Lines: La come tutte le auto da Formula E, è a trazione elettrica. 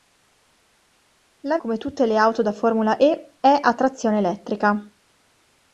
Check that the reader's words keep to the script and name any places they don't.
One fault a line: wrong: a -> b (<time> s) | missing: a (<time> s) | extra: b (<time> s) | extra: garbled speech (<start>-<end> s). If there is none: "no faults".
no faults